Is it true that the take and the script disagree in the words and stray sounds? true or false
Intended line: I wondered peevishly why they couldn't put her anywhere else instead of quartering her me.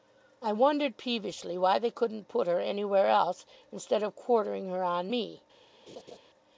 true